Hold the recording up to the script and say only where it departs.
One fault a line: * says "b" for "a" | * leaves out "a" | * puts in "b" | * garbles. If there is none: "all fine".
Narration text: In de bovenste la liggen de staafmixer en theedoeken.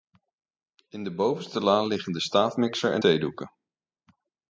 all fine